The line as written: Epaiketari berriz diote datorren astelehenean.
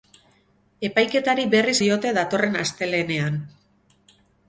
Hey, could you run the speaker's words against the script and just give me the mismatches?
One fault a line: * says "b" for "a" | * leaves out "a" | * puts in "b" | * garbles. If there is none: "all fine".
all fine